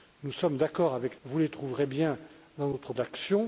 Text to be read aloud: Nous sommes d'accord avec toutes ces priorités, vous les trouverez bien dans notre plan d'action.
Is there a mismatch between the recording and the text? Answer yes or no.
yes